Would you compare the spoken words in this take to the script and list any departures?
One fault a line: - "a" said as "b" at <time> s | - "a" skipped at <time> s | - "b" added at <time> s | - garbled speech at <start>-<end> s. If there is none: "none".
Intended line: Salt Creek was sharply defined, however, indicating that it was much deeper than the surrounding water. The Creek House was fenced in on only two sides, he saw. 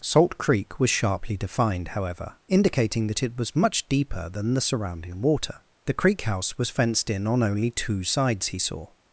none